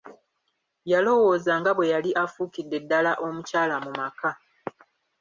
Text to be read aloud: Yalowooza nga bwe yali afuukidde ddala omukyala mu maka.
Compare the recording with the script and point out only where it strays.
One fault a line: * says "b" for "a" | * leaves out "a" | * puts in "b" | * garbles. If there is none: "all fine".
all fine